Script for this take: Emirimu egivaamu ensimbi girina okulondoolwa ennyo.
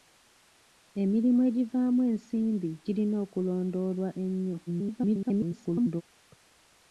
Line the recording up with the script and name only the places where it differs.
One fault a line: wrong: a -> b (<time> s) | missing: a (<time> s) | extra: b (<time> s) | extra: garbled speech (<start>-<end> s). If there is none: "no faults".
extra: garbled speech (4.7-6.0 s)